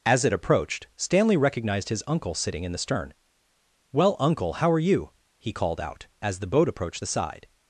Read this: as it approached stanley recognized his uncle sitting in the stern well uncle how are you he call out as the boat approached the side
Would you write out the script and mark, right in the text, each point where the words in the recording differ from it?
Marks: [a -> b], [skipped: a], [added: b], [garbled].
as it approached stanley recognized his uncle sitting in the stern well uncle how are you he [call -> called] out as the boat approached the side